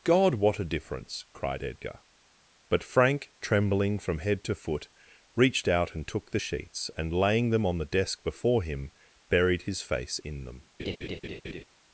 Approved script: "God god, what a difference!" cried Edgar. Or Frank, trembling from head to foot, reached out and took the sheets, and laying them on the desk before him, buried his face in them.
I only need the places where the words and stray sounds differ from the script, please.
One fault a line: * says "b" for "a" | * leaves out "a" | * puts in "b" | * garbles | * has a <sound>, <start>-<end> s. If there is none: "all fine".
* leaves out "god"
* says "But" for "Or"
* has a laugh, 10.8-11.6 s